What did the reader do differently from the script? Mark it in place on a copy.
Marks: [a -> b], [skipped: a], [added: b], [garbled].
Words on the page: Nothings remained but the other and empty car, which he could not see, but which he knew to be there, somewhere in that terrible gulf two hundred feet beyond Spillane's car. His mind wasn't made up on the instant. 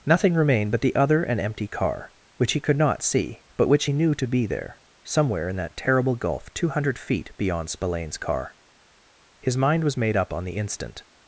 [Nothings -> Nothing] remained but the other and empty car, which he could not see, but which he knew to be there, somewhere in that terrible gulf two hundred feet beyond Spillane's car. His mind [wasn't -> was] made up on the instant.